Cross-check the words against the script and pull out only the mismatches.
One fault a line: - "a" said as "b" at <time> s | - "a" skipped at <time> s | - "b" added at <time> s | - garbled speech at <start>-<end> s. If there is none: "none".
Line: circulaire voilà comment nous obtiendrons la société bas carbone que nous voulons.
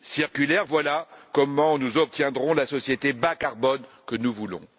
none